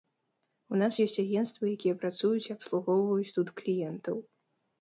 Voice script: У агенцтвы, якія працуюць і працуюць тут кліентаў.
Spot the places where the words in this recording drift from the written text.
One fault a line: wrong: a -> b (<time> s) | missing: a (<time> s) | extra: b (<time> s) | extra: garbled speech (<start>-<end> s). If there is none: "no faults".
extra: нас ёсць (0.8 s)
wrong: працуюць -> абслугоўваюць (2.6 s)